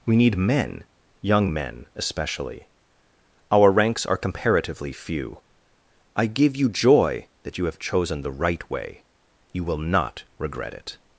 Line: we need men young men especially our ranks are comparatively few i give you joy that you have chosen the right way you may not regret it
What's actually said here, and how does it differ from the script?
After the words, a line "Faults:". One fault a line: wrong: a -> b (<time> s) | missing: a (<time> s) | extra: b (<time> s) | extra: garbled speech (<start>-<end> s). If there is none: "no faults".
we need men young men especially our ranks are comparatively few i give you joy that you have chosen the right way you will not regret it
Faults:
wrong: may -> will (9.6 s)